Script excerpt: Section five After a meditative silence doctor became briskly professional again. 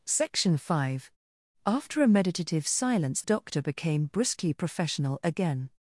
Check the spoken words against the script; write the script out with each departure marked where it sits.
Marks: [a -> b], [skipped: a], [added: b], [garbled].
Section five After a meditative silence doctor became briskly professional again.